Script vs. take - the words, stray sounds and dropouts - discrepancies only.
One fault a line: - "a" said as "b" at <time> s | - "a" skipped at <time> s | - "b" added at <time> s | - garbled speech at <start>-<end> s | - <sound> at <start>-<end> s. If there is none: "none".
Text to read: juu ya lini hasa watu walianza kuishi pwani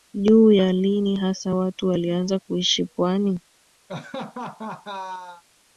- laugh at 3.9-5.4 s